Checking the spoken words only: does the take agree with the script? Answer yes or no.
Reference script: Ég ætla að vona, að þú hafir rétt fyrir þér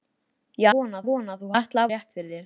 no